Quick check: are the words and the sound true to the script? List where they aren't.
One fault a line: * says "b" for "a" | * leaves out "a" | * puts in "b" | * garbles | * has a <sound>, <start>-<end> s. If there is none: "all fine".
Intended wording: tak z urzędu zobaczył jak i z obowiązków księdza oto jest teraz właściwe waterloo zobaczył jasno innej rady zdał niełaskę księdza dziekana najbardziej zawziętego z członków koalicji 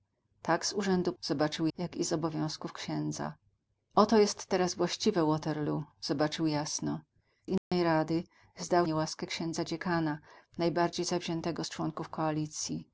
* has a dropout, 7.6-7.7 s